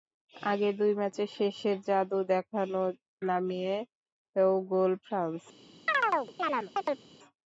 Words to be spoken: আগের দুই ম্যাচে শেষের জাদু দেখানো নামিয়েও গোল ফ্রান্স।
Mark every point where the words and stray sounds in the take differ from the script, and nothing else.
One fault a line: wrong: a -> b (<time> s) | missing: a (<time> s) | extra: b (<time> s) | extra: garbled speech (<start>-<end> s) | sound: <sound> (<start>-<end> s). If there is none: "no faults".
sound: chirp (5.9-7.1 s)